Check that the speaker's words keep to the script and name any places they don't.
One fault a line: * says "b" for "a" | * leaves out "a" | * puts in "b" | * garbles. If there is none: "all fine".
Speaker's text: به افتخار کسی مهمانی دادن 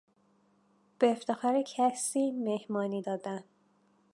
all fine